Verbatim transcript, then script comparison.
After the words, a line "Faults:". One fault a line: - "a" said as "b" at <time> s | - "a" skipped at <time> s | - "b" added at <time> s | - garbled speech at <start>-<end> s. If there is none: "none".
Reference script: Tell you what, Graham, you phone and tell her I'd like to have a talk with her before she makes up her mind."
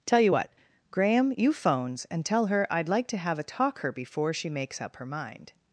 Tell you what, Graham, you phones and tell her I'd like to have a talk her before she makes up her mind."
Faults:
- "phone" said as "phones" at 1.5 s
- "with" skipped at 3.8 s